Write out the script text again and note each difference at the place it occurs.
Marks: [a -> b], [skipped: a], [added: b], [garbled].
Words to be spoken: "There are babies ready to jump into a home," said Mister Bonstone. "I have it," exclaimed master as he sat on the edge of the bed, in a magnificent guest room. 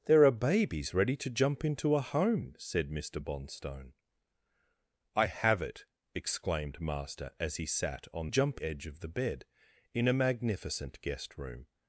"There are babies ready to jump into a home," said Mister Bonstone. "I have it," exclaimed master as he sat on [the -> jump] edge of the bed, in a magnificent guest room.